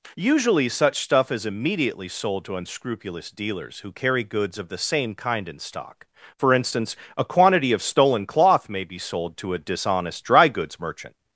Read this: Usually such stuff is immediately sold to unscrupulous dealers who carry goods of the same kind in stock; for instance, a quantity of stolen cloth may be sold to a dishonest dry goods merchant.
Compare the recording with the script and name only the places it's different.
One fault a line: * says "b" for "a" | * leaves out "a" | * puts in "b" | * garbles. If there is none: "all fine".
all fine